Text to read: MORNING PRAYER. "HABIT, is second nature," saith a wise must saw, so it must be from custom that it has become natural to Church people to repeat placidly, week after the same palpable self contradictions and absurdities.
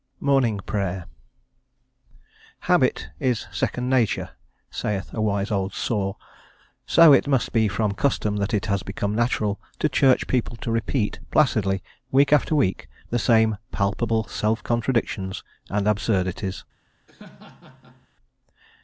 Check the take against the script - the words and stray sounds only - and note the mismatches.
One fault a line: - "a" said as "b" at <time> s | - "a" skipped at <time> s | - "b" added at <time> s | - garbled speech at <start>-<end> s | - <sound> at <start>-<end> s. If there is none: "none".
- "must" said as "old" at 5.5 s
- "week" added at 12.6 s
- laugh at 17.1-18.1 s